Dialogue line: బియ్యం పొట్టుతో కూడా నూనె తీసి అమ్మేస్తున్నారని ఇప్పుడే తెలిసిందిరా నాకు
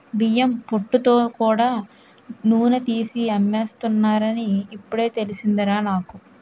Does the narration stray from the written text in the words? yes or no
no